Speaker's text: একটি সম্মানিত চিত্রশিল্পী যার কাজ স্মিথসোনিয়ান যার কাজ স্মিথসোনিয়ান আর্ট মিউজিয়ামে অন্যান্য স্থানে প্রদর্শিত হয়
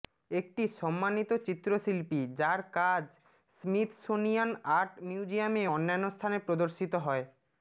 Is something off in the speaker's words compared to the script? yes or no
yes